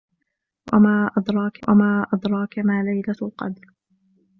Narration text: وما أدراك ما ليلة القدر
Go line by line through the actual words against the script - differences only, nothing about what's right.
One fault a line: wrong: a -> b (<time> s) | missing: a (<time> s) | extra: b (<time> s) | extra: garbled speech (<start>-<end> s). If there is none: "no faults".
extra: وما أدراك (1.7 s)